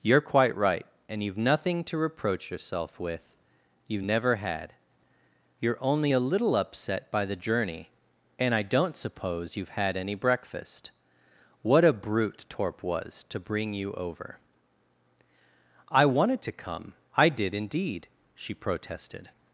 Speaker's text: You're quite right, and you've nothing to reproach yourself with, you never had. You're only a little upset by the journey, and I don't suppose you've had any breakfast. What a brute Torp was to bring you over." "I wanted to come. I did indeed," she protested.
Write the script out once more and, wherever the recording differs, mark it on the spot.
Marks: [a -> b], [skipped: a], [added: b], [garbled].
You're quite right, and you've nothing to reproach yourself with, you never had. You're only a little upset by the journey, and I don't suppose you've had any breakfast. What a brute Torp was to bring you over." "I wanted to come. I did indeed," she protested.